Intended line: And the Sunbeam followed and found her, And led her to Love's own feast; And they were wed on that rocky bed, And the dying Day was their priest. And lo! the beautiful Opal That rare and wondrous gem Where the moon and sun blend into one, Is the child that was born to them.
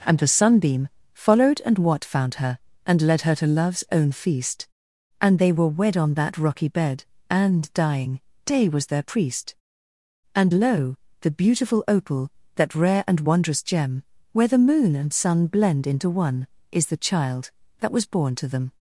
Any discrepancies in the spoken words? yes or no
yes